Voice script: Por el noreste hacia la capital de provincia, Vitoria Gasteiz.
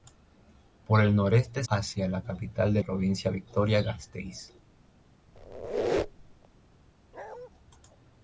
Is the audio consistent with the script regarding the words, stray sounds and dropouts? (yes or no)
no